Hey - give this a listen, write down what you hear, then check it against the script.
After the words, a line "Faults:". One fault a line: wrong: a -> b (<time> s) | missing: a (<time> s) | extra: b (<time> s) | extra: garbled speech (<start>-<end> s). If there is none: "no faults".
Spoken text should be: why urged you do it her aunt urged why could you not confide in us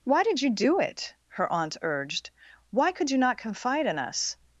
why did you do it her aunt urged why could you not confide in us
Faults:
wrong: urged -> did (0.2 s)